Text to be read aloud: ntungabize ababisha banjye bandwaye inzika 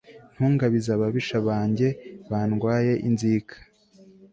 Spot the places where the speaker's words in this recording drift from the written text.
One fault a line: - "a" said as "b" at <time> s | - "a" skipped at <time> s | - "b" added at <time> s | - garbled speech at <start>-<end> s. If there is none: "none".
none